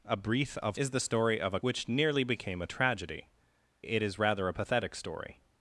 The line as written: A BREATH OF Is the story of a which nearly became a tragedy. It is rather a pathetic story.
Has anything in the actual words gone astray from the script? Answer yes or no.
no